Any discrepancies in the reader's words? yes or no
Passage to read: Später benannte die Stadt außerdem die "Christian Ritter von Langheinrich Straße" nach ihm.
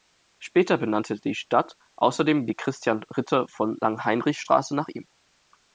no